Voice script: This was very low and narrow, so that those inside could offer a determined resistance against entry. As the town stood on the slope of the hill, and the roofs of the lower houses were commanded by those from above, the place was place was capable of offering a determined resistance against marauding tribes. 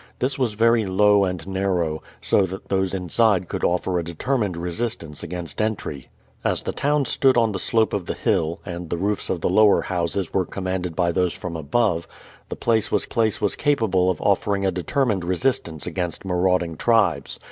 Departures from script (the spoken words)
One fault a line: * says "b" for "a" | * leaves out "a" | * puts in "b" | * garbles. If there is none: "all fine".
all fine